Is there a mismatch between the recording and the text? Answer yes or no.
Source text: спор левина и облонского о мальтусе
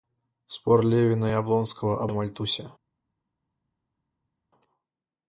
no